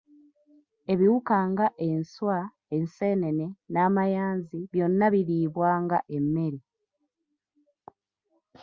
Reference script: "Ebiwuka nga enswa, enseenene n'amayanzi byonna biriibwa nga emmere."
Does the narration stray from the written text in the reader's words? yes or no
no